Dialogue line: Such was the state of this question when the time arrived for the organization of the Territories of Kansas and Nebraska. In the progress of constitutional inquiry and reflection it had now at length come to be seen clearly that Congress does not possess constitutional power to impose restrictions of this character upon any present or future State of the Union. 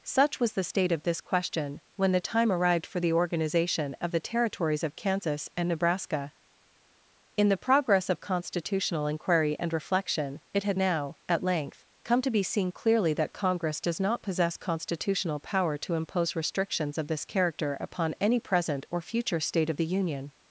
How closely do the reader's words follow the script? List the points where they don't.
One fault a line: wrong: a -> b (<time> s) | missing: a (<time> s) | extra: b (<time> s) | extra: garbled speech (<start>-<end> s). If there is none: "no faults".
no faults